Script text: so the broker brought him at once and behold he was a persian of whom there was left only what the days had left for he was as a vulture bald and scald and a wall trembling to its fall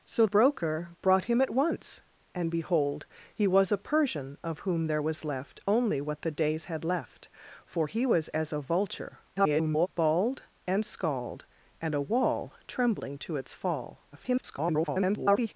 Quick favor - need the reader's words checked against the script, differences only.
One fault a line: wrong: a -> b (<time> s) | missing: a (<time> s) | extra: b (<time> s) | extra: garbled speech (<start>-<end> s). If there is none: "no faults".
missing: the (0.2 s)
extra: garbled speech (9.4-9.9 s)
extra: garbled speech (14.1-15.5 s)